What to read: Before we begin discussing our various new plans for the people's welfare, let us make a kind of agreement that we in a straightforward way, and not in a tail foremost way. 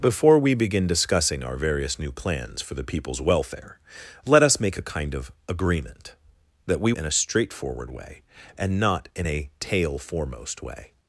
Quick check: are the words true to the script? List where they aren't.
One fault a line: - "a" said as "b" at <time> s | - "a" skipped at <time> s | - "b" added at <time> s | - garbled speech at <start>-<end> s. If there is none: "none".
none